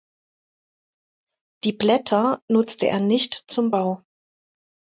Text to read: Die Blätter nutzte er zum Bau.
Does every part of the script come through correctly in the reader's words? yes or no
no